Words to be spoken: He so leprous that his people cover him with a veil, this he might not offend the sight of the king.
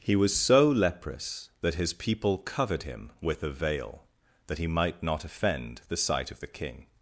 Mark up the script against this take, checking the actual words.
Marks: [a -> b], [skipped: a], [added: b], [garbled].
He [added: was] so leprous that his people [cover -> covered] him with a veil, [this -> that] he might not offend the sight of the king.